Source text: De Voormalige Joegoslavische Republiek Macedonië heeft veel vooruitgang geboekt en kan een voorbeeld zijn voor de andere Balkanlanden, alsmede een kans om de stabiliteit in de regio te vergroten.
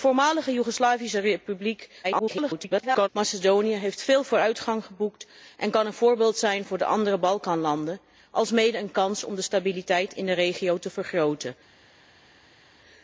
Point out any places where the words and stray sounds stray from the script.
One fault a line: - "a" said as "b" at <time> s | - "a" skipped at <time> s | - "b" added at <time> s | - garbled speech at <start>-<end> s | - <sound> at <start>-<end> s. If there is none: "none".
- garbled speech at 2.0-3.1 s